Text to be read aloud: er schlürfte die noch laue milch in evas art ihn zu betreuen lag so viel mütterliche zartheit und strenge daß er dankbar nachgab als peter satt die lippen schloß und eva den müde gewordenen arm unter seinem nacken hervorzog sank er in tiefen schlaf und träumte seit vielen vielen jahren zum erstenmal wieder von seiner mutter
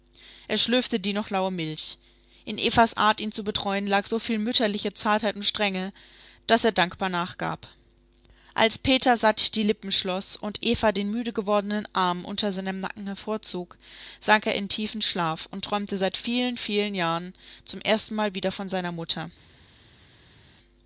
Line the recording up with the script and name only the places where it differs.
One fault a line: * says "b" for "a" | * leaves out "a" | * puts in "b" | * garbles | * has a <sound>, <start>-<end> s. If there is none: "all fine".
all fine